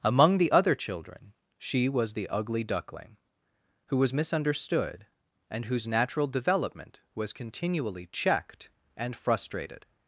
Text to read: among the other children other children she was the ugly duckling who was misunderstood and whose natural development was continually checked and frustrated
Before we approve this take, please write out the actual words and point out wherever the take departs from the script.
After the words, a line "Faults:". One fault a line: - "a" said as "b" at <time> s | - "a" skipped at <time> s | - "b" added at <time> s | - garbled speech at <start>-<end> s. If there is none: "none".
among the other children she was the ugly duckling who was misunderstood and whose natural development was continually checked and frustrated
Faults:
- "other children" skipped at 1.3 s